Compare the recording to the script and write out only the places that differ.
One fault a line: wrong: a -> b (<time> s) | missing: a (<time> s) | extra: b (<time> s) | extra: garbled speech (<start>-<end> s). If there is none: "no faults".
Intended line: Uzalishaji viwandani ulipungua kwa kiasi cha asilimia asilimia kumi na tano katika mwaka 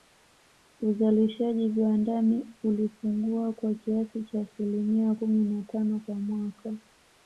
missing: asilimia (5.2 s)
wrong: katika -> kwa (6.1 s)